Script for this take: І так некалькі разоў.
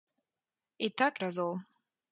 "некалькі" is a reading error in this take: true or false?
true